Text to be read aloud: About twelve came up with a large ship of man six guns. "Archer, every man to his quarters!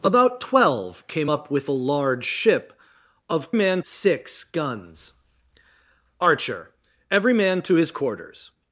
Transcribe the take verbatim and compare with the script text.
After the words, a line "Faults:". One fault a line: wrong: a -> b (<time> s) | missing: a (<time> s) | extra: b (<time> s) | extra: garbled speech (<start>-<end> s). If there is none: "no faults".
About twelve came up with a large ship of man six guns. "Archer, every man to his quarters!
Faults:
no faults